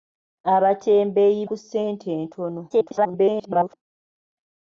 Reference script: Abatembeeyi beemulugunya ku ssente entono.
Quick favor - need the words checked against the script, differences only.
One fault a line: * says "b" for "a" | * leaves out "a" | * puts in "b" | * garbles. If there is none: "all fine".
* leaves out "beemulugunya"
* garbles